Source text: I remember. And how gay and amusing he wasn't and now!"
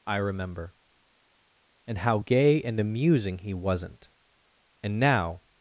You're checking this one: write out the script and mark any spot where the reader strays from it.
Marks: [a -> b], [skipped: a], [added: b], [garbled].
I remember. And how gay and amusing he wasn't and now!"